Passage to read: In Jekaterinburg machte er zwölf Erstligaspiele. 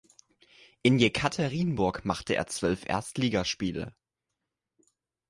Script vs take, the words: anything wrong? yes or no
no